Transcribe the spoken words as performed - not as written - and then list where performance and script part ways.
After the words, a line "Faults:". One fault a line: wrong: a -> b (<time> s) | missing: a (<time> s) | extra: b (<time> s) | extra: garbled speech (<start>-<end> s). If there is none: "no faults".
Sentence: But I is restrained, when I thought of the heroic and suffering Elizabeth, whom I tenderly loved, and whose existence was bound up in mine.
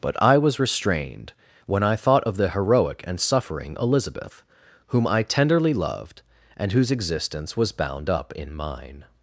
But I was restrained, when I thought of the heroic and suffering Elizabeth, whom I tenderly loved, and whose existence was bound up in mine.
Faults:
wrong: is -> was (0.4 s)